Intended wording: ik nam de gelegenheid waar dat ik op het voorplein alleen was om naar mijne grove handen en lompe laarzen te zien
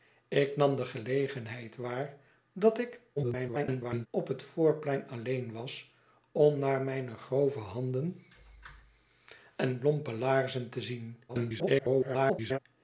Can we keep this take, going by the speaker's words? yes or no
no